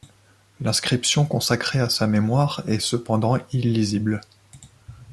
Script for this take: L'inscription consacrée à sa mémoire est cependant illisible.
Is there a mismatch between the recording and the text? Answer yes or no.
no